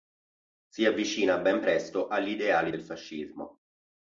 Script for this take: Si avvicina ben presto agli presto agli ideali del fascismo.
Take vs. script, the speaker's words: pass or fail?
fail